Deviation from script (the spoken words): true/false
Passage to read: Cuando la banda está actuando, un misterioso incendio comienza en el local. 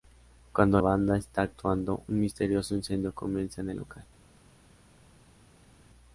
true